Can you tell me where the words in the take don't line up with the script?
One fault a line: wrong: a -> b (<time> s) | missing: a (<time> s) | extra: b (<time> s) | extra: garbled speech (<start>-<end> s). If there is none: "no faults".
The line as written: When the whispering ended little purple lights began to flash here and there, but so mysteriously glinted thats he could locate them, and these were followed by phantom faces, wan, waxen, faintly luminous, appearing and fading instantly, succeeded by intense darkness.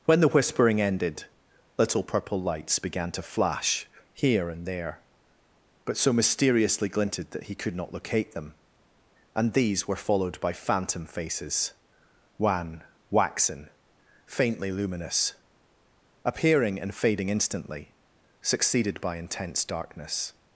wrong: thats -> that (7.3 s)
extra: not (7.8 s)